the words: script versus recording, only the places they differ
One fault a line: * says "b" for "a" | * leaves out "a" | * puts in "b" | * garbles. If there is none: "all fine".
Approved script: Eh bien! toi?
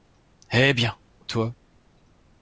all fine